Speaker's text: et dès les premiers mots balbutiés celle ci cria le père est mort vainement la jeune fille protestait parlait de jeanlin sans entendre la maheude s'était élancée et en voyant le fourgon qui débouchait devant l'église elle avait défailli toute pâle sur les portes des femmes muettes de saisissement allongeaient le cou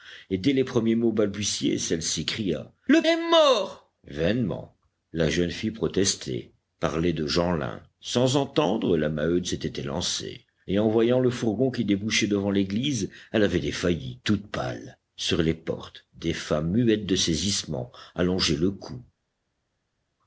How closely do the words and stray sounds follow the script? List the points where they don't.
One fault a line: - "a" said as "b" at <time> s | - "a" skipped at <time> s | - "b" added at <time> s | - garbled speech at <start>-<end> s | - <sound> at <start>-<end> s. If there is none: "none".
- "père" skipped at 3.0 s